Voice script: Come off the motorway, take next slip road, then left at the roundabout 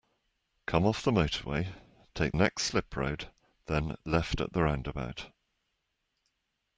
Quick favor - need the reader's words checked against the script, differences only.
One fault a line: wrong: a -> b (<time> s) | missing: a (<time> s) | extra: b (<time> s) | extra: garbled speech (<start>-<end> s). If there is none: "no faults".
no faults